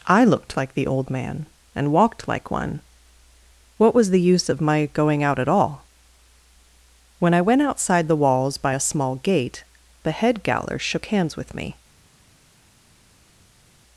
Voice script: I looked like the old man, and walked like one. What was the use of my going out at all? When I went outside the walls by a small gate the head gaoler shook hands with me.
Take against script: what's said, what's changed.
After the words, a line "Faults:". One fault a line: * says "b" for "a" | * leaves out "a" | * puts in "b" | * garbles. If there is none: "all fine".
I looked like the old man, and walked like one. What was the use of my going out at all? When I went outside the walls by a small gate the head gaoler shook hands with me.
Faults:
all fine